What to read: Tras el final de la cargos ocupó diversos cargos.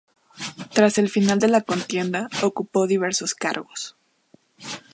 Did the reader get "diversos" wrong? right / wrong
right